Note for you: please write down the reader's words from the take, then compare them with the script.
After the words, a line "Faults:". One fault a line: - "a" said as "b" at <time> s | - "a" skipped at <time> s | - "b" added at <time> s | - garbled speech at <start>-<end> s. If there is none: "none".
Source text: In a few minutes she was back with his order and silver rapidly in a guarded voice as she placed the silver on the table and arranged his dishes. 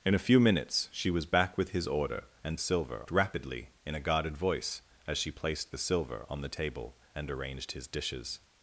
In a few minutes she was back with his order and silver rapidly in a guarded voice as she placed the silver on the table and arranged his dishes.
Faults:
none